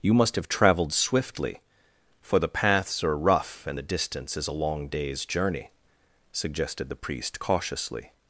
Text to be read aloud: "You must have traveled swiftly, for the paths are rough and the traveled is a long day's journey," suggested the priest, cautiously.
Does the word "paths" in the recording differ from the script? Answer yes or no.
no